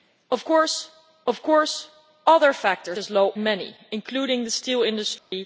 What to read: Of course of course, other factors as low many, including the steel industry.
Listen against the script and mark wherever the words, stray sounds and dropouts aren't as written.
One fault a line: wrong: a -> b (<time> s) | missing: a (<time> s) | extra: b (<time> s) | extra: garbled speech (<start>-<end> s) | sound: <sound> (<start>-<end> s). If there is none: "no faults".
sound: dropout (5.2-5.3 s)